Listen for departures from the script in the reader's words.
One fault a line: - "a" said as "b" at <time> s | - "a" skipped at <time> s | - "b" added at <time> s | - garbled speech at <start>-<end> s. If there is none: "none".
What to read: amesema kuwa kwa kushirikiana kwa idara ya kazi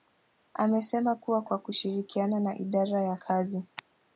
- "kwa" said as "na" at 2.4 s